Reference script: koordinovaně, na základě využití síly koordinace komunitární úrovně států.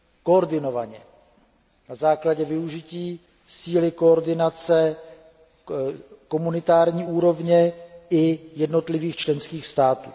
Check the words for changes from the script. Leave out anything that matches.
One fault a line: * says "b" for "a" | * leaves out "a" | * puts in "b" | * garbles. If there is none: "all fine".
* puts in "i jednotlivých členských"